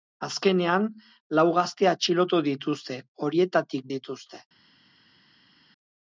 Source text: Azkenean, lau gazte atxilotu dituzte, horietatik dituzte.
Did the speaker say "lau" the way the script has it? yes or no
yes